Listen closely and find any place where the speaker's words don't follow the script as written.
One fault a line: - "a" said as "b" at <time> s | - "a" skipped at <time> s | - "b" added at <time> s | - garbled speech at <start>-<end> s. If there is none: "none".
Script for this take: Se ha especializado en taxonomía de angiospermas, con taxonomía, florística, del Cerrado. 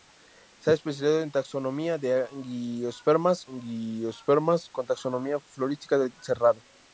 - "angiospermas" added at 3.5 s